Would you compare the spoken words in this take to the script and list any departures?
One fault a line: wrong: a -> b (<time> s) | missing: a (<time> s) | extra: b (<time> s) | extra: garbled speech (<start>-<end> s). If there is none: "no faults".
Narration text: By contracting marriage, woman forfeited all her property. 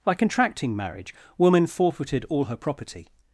no faults